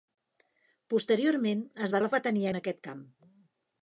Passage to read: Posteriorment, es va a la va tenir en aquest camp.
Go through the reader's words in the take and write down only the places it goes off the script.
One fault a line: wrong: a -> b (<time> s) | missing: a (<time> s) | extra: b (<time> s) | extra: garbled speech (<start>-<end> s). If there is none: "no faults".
no faults